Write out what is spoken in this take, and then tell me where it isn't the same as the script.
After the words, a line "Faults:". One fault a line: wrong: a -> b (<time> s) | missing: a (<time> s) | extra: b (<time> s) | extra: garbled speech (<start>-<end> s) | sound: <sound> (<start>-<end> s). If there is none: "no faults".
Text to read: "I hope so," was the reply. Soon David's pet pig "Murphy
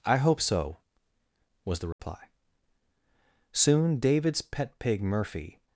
"I hope so," was the reply. Soon David's pet pig "Murphy
Faults:
sound: dropout (1.9-2.0 s)